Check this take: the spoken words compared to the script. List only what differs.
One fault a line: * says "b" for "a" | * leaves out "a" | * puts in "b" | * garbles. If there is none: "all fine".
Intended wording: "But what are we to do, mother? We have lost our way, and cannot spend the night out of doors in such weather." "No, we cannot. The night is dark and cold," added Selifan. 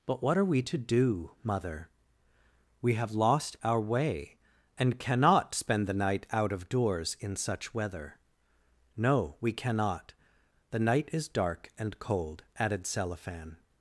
all fine